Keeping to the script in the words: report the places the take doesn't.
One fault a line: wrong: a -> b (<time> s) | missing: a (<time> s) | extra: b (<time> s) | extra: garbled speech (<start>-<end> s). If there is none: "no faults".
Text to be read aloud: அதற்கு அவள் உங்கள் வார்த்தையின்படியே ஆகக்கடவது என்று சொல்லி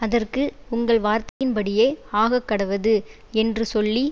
missing: அவள் (0.4 s)